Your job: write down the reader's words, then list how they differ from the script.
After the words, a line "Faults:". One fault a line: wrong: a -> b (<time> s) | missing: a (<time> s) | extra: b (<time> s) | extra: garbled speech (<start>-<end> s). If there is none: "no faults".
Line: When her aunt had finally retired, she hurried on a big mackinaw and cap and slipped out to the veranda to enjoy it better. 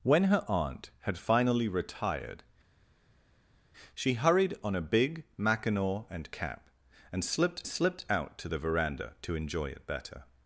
When her aunt had finally retired, she hurried on a big mackinaw and cap and slipped slipped out to the veranda to enjoy it better.
Faults:
extra: slipped (7.7 s)